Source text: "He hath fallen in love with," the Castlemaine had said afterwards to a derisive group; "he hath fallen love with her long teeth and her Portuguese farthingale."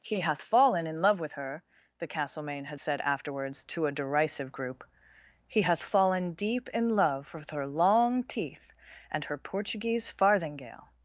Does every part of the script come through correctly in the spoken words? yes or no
no